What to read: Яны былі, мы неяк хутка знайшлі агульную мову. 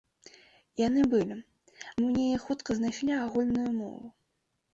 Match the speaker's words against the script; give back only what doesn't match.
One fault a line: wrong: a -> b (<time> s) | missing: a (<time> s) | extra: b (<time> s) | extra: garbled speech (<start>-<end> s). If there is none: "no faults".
no faults